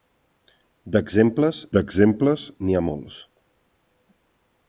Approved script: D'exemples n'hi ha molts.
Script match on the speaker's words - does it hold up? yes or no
no